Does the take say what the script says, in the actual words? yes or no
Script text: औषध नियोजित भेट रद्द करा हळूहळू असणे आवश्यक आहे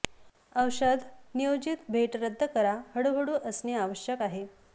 yes